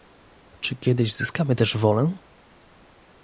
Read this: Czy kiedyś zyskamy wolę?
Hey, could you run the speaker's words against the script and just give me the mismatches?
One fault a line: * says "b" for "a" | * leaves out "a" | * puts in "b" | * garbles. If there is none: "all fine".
* puts in "też"